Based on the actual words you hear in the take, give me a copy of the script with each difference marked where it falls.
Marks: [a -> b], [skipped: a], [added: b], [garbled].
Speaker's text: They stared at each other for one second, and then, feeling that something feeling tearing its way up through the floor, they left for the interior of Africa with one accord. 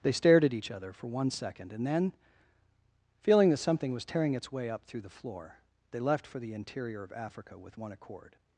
They stared at each other for one second, and then, feeling that something [feeling -> was] tearing its way up through the floor, they left for the interior of Africa with one accord.